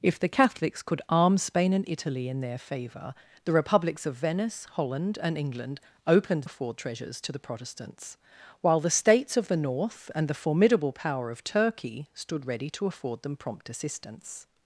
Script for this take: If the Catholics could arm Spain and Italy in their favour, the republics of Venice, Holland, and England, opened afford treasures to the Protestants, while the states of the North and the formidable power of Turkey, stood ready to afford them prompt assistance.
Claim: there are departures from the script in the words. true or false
false